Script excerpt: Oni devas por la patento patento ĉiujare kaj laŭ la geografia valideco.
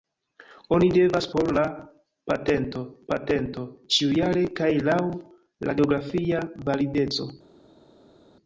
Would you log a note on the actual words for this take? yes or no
no